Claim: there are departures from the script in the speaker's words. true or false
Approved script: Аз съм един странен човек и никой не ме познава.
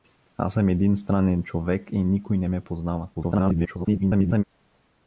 true